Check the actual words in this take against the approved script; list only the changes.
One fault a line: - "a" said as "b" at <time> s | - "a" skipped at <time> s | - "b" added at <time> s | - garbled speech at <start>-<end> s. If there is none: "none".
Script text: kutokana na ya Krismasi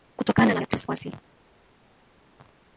none